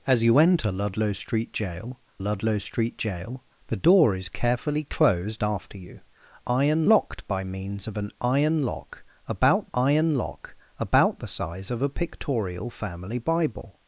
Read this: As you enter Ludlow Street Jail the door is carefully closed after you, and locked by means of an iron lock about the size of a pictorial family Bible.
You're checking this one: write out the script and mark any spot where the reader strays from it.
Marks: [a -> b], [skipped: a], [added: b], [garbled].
As you enter Ludlow Street Jail [added: Ludlow Street Jail] the door is carefully closed after you, [and -> iron] locked by means of an iron lock about [added: iron lock about] the size of a pictorial family Bible.